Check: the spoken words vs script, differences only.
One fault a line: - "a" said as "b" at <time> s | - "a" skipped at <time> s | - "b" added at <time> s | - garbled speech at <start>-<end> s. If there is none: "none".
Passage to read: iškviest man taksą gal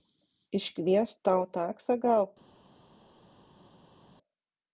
- "man" said as "tau" at 1.3 s